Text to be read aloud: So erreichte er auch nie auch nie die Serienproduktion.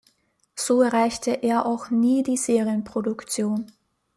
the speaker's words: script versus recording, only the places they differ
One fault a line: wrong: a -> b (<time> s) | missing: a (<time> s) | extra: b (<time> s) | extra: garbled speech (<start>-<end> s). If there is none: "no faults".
missing: auch nie (2.2 s)